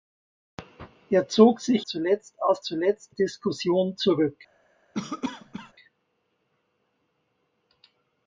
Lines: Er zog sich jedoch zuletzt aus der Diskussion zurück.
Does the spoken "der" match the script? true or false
false